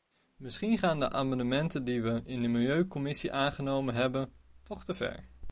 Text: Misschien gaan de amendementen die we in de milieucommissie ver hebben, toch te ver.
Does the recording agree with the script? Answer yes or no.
no